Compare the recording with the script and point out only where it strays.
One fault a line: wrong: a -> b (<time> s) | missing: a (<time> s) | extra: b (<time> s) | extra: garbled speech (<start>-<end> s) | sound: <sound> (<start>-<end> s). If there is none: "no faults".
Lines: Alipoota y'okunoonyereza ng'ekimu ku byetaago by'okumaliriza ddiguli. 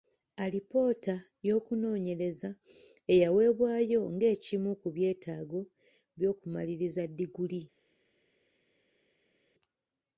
extra: eyaweebwayo (3.1 s)